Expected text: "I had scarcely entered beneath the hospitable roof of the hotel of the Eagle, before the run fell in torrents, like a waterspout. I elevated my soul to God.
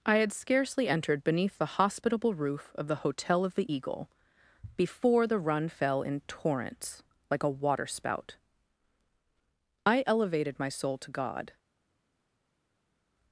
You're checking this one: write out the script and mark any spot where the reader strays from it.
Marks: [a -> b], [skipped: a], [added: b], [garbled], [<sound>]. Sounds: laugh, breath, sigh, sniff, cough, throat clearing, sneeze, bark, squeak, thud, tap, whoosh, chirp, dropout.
"I had scarcely entered beneath the hospitable roof of the hotel of the Eagle, before the run fell in torrents, like a waterspout. I elevated my soul to God.